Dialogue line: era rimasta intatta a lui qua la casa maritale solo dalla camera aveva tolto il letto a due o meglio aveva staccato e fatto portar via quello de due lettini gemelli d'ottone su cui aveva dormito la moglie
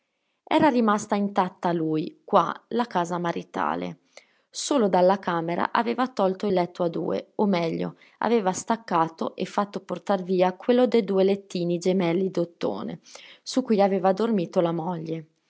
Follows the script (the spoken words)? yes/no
yes